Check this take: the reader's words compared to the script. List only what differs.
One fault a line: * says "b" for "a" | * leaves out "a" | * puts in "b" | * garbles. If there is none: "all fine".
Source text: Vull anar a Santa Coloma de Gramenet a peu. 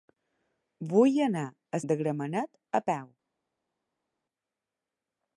* leaves out "Santa Coloma"